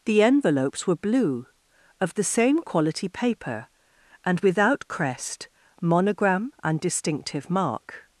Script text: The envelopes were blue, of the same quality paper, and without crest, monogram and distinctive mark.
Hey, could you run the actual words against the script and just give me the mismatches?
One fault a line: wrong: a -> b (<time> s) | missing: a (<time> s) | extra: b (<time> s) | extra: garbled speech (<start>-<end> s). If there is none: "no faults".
no faults